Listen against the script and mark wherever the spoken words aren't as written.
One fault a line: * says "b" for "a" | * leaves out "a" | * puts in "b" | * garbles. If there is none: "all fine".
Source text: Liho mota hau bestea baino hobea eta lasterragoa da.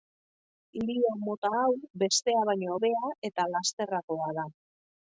all fine